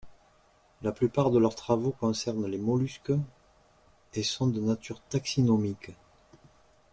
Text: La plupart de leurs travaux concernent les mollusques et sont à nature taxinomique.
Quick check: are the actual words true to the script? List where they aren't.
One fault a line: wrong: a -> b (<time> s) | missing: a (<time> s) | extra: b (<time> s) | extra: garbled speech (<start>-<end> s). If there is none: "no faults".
wrong: à -> de (4.5 s)